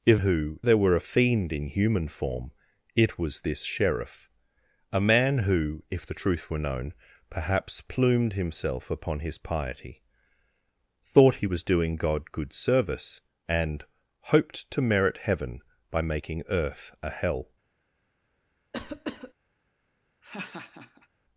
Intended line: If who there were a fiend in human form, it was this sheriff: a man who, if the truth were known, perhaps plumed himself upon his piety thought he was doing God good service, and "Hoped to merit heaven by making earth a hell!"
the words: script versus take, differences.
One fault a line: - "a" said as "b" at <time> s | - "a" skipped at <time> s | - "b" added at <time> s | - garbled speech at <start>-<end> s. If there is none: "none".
none